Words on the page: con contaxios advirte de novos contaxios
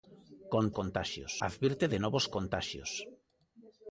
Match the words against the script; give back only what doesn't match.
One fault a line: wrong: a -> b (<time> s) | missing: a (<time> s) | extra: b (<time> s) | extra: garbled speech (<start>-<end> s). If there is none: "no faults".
no faults